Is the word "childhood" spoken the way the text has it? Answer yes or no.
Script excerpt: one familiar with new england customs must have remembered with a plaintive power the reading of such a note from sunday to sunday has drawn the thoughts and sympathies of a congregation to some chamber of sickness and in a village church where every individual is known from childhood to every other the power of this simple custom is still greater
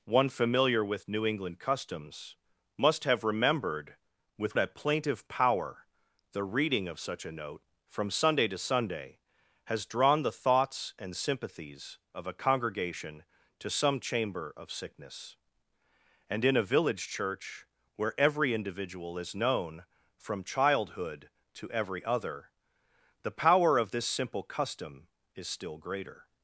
yes